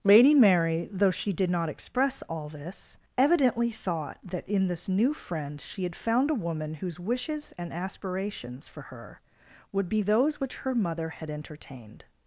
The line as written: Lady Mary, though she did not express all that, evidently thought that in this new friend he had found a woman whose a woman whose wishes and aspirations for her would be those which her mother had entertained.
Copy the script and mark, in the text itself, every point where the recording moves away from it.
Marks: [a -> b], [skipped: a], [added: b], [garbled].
Lady Mary, though she did not express all [that, -> this] evidently thought that in this new friend [he -> she] had found a woman whose [skipped: a woman whose] wishes and aspirations for her would be those which her mother had entertained.